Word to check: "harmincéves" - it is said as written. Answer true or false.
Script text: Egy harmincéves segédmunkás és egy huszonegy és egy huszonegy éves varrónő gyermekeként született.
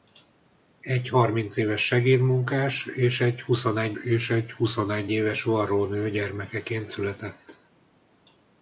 true